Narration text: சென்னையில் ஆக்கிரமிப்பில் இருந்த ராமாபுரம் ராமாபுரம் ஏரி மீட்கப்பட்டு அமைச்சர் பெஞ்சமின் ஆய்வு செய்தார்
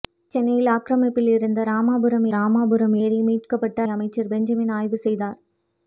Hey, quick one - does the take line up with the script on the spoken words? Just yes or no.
yes